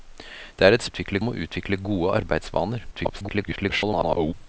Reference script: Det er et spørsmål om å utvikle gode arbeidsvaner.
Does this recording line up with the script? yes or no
no